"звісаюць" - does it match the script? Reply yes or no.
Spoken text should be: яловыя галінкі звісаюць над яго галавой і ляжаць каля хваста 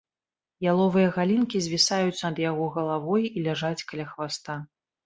yes